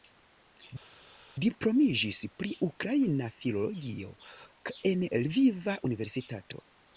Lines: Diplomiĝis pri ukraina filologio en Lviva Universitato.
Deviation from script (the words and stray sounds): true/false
false